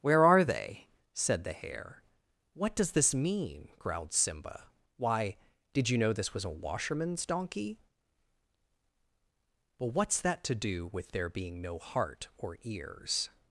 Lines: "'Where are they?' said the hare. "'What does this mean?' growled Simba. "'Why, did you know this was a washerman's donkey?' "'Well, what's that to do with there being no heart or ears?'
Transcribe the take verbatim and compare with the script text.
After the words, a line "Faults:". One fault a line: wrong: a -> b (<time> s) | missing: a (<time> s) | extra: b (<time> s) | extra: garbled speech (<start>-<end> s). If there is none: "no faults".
"'Where are they?' said the hare. "'What does this mean?' growled Simba. "'Why, did you know this was a washerman's donkey?' "'Well, what's that to do with there being no heart or ears?'
Faults:
no faults